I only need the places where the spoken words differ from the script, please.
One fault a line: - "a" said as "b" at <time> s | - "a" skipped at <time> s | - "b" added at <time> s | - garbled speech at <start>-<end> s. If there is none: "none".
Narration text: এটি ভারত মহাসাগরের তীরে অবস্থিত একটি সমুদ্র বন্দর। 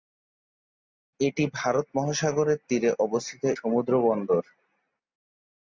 - "একটি" skipped at 3.4 s